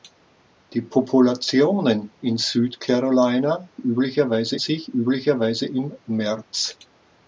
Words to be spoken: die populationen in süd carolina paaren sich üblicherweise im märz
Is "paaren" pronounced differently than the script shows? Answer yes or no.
yes